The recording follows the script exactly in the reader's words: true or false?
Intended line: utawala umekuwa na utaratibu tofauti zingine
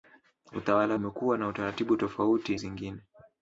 true